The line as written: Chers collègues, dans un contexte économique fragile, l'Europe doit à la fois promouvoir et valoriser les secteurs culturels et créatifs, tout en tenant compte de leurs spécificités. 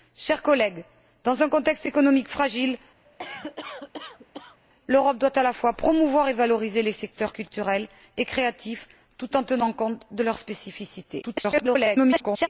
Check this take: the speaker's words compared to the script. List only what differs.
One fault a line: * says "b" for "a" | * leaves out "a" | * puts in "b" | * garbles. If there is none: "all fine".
* garbles